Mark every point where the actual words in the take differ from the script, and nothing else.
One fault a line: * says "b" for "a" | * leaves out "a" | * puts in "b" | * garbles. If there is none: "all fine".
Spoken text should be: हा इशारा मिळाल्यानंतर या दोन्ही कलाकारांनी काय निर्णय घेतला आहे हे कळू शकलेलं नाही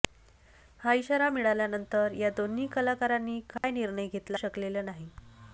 * leaves out "आहे हे कळू"